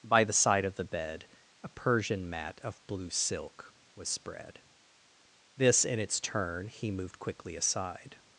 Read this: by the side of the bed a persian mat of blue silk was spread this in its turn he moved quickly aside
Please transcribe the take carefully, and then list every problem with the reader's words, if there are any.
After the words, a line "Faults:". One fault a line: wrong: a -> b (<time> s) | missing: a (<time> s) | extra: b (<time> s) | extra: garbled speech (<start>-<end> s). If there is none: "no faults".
by the side of the bed a persian mat of blue silk was spread this in its turn he moved quickly aside
Faults:
no faults